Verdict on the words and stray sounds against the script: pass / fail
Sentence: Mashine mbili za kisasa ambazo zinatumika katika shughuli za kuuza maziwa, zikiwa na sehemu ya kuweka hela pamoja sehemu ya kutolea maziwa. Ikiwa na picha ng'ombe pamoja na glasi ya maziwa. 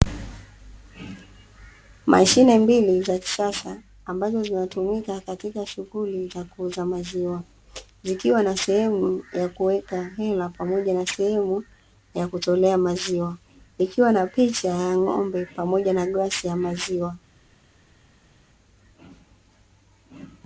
fail